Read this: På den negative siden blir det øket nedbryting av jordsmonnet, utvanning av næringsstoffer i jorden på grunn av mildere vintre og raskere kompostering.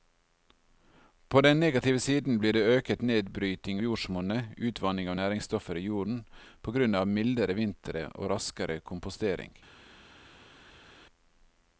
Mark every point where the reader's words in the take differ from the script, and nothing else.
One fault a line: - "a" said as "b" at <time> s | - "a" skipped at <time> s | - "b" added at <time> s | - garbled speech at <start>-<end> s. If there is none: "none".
- "av" skipped at 3.8 s